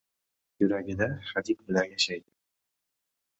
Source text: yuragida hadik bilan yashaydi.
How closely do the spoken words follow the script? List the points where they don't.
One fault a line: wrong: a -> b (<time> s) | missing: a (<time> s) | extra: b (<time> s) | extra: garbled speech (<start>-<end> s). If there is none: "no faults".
no faults